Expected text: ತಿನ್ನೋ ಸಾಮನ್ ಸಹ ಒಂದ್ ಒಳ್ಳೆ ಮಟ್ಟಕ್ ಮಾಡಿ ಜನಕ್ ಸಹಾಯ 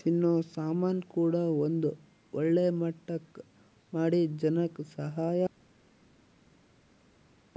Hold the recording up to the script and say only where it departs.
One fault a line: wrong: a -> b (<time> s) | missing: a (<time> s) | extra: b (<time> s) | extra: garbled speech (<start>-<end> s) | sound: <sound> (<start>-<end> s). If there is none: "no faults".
wrong: ಸಹ -> ಕೂಡ (1.1 s)